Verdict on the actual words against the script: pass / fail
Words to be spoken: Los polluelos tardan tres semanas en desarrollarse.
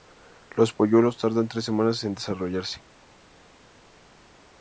pass